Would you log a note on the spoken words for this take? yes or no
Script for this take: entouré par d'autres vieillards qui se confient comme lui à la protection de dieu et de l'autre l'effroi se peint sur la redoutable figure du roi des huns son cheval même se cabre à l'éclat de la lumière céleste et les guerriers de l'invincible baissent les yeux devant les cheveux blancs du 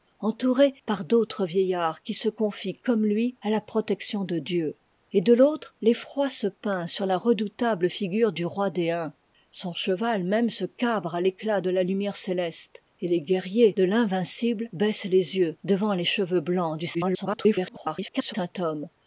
yes